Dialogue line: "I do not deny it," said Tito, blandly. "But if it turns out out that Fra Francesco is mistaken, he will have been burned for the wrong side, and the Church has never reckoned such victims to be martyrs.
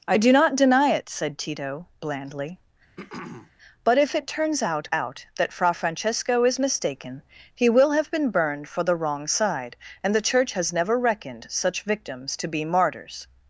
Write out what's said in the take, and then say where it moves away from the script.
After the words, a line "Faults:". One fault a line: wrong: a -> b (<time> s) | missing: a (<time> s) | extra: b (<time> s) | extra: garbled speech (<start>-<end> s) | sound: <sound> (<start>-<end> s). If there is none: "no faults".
"I do not deny it," said Tito, blandly. "But if it turns out out that Fra Francesco is mistaken, he will have been burned for the wrong side, and the Church has never reckoned such victims to be martyrs.
Faults:
sound: throat clearing (3.0-3.5 s)